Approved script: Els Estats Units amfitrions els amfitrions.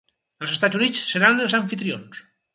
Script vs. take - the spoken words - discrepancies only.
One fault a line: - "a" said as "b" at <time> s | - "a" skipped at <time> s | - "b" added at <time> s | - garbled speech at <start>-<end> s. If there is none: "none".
- "amfitrions" said as "seran" at 1.1 s